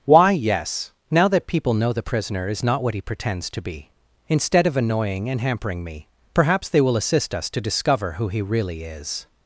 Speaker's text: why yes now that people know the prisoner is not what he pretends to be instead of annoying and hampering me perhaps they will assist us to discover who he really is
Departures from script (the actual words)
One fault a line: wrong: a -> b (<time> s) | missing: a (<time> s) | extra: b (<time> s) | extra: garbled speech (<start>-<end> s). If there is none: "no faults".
no faults